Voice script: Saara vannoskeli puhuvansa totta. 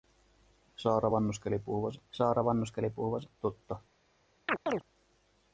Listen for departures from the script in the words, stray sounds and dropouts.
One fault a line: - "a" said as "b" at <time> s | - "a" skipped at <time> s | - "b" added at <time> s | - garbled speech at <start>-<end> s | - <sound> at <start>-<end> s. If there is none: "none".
- "saara vannoskeli puhuvansa" added at 2.1 s
- chirp at 4.5-4.8 s